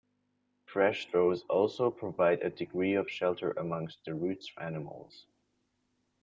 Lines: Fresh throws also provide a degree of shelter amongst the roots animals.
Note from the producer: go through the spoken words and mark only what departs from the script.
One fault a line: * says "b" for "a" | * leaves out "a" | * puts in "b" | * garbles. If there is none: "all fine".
all fine